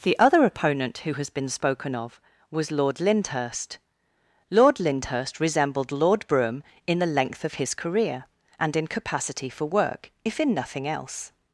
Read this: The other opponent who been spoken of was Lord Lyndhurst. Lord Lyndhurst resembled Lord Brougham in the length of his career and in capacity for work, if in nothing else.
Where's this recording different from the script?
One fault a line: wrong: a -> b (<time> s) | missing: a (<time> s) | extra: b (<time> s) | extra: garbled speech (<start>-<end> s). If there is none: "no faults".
extra: has (1.1 s)